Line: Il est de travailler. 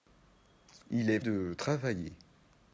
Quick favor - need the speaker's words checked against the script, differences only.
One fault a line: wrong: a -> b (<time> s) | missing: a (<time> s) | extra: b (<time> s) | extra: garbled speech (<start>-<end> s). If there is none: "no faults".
no faults